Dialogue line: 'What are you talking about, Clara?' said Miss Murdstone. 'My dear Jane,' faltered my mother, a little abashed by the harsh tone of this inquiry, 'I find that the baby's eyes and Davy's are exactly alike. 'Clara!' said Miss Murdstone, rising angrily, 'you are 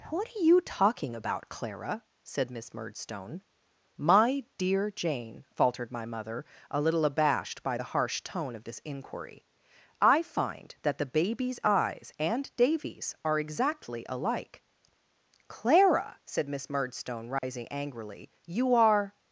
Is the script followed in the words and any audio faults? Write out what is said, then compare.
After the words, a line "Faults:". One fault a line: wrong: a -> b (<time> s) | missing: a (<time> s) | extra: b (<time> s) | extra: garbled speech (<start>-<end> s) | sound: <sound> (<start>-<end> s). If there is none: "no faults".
'What are you talking about, Clara?' said Miss Murdstone. 'My dear Jane,' faltered my mother, a little abashed by the harsh tone of this inquiry, 'I find that the baby's eyes and Davy's are exactly alike. 'Clara!' said Miss Murdstone, rising angrily, 'you are
Faults:
sound: dropout (17.4-17.4 s)